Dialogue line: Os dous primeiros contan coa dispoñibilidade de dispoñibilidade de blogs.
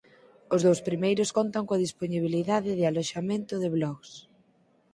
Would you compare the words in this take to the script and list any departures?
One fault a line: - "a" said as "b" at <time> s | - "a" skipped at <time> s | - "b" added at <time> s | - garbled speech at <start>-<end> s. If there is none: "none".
- "dispoñibilidade" said as "aloxamento" at 2.9 s